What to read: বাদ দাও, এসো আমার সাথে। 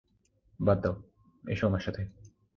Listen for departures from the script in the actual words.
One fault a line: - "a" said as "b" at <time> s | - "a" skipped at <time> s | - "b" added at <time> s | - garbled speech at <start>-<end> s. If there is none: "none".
none